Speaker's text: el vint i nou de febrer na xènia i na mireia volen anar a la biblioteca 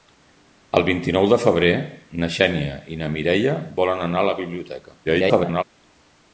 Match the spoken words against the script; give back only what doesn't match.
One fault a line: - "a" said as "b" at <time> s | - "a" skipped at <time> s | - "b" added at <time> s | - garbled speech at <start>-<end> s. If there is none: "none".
- garbled speech at 5.0-5.6 s